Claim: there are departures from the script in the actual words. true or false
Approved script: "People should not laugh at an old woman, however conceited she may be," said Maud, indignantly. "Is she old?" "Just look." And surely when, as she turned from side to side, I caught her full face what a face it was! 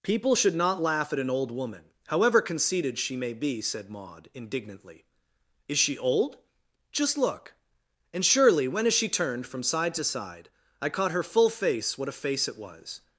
false